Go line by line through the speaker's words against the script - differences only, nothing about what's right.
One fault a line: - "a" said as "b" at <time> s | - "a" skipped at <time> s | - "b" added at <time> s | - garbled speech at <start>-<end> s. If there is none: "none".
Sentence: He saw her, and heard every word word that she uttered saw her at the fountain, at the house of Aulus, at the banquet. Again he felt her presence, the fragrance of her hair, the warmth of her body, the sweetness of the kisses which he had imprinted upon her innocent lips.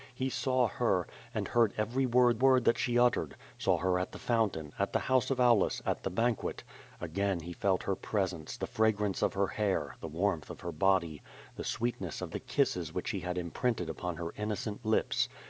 none